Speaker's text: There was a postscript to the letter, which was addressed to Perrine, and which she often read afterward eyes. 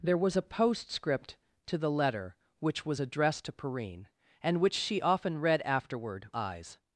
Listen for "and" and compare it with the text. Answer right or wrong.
right